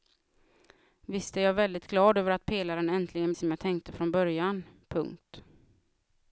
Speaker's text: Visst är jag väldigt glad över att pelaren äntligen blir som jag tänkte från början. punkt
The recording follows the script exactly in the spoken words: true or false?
false